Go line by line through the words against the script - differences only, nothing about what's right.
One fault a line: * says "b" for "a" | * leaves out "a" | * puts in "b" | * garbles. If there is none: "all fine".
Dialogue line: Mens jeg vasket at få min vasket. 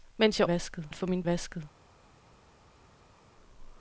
all fine